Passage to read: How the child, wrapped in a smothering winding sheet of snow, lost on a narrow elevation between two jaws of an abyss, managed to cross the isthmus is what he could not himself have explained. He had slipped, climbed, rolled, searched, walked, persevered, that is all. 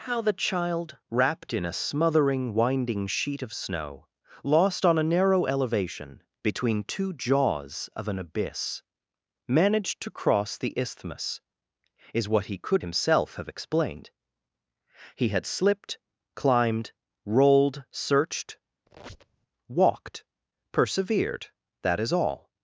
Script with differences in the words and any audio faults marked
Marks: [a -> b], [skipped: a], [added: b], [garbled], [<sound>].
How the child, wrapped in a smothering winding sheet of snow, lost on a narrow elevation between two jaws of an abyss, managed to cross the isthmus is what he could [skipped: not] himself have explained. He had slipped, climbed, rolled, searched, [squeak] walked, persevered, that is all.